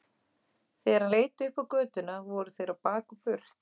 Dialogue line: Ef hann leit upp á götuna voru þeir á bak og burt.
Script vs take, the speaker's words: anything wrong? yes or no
yes